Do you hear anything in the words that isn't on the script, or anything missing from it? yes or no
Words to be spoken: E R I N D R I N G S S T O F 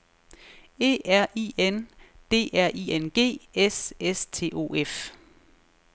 no